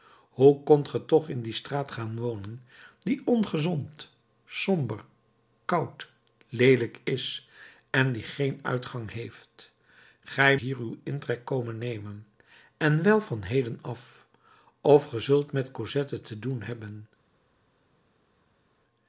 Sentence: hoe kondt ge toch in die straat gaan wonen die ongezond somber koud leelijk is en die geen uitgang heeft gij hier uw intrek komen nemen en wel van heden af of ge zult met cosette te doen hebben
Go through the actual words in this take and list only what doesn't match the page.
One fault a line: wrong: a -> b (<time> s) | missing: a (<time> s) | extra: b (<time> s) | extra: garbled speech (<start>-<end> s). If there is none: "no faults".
no faults